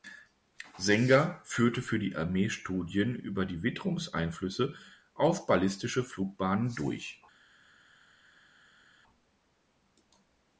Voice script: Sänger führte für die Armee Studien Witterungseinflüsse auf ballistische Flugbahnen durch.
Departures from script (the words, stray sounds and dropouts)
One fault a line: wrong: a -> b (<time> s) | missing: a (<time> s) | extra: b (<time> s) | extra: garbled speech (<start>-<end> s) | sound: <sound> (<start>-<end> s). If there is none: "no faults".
extra: über die (3.1 s)